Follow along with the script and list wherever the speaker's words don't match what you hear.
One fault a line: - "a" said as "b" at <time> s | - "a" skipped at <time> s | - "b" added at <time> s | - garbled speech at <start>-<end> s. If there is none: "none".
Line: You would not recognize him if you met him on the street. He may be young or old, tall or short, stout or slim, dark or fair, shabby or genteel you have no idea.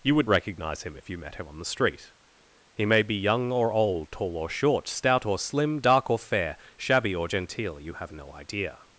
- "not" skipped at 0.3 s